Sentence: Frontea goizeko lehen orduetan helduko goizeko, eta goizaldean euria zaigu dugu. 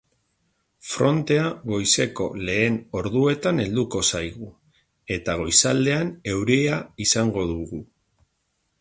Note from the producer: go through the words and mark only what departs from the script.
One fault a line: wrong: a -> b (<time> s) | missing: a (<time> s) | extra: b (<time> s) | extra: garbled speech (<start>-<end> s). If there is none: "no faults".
wrong: goizeko -> zaigu (4.1 s)
wrong: zaigu -> izango (7.1 s)